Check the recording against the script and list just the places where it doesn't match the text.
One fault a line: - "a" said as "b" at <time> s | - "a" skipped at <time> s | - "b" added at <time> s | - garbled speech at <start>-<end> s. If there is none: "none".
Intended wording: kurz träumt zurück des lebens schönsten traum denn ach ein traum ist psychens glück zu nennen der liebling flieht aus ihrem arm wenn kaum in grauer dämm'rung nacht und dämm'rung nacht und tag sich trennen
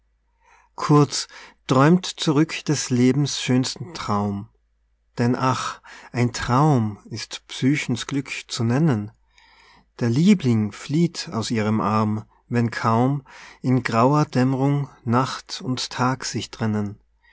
- "dämm'rung nacht und" skipped at 15.9 s